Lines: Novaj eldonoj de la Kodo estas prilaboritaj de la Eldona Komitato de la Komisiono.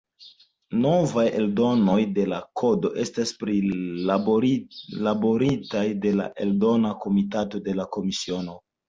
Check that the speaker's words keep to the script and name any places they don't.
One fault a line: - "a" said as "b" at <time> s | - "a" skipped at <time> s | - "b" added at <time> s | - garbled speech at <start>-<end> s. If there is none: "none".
none